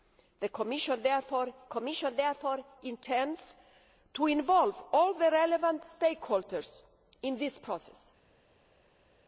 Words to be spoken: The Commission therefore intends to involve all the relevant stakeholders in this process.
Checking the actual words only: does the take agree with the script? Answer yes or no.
no